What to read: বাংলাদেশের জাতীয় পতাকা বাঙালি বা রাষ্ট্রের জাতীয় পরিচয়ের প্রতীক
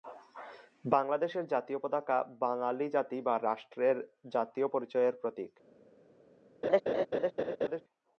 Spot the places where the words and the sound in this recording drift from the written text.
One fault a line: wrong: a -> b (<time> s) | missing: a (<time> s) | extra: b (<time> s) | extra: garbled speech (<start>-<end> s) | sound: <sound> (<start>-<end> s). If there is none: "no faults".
extra: জাতি (2.9 s)
sound: laugh (6.6-7.8 s)